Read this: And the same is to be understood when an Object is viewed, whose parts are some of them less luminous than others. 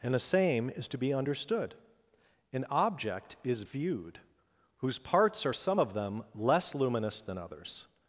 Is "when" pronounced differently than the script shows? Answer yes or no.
yes